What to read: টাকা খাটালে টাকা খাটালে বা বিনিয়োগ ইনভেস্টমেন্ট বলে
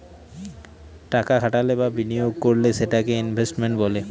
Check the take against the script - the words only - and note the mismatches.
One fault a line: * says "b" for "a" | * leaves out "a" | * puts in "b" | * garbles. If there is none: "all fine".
* says "বা বিনিয়োগ করলে সেটাকে" for "টাকা খাটালে বা বিনিয়োগ"